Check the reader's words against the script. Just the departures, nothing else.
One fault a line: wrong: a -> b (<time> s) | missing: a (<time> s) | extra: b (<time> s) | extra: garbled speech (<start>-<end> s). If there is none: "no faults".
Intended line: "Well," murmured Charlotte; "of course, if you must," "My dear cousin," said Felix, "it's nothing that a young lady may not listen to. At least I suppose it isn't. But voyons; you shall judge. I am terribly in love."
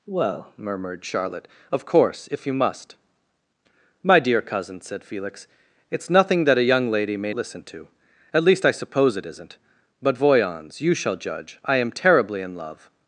missing: not (7.3 s)